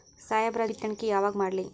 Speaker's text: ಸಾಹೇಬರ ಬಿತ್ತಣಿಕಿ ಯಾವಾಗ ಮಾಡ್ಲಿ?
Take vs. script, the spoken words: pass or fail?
pass